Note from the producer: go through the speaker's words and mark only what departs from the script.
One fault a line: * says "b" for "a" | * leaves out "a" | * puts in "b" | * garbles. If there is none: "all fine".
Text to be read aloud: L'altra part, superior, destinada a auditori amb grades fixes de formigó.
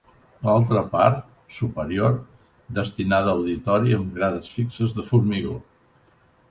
all fine